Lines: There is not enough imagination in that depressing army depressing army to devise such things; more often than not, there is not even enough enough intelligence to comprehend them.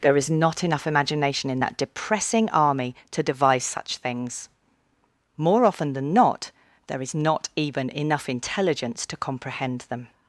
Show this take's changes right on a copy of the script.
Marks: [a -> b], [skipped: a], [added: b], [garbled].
There is not enough imagination in that depressing army [skipped: depressing army] to devise such things; more often than not, there is not even enough [skipped: enough] intelligence to comprehend them.